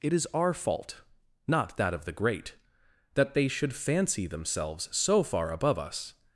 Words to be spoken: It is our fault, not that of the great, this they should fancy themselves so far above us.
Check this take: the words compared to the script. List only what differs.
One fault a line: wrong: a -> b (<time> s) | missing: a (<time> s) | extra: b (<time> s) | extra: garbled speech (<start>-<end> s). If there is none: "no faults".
wrong: this -> that (3.1 s)